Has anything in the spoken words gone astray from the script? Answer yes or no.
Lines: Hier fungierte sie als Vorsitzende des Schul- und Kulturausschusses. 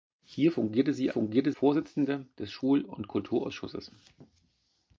yes